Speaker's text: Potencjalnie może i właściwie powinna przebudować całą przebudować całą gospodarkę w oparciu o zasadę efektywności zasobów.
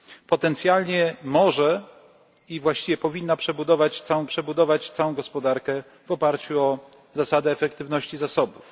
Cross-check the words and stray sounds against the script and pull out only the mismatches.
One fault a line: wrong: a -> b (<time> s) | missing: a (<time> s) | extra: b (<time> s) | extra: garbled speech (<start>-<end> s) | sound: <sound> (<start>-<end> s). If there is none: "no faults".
no faults